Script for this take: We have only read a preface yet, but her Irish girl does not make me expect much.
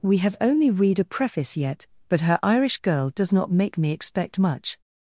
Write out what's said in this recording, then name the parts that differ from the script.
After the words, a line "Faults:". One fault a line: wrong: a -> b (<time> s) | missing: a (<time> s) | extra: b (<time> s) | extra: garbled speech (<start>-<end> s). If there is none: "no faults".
We have only read a preface yet, but her Irish girl does not make me expect much.
Faults:
no faults